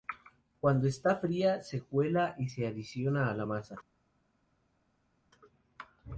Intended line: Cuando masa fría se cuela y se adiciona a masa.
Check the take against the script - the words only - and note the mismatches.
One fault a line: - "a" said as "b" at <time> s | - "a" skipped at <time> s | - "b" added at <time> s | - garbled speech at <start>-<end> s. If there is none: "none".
- "masa" said as "está" at 0.9 s
- "la" added at 3.3 s